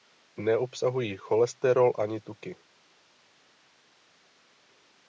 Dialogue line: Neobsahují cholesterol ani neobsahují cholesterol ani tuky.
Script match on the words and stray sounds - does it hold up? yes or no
no